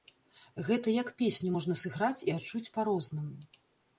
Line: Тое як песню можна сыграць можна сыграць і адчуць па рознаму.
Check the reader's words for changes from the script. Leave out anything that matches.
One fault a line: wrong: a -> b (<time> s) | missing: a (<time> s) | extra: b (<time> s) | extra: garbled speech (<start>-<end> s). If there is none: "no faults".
wrong: Тое -> Гэта (0.7 s)
missing: можна сыграць (2.2 s)